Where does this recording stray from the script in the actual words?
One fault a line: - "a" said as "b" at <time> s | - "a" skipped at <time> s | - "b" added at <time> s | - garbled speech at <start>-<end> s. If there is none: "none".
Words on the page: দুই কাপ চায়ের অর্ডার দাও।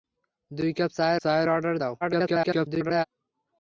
- "চায়ের" added at 1.2 s
- garbled speech at 2.0-3.0 s